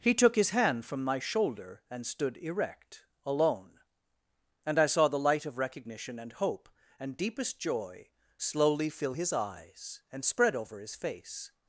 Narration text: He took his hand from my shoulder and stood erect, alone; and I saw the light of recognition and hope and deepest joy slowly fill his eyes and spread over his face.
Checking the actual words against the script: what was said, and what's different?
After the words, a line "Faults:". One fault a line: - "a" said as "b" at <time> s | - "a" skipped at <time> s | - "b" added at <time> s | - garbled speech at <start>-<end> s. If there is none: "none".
He took his hand from my shoulder and stood erect, alone; and I saw the light of recognition and hope and deepest joy slowly fill his eyes and spread over his face.
Faults:
none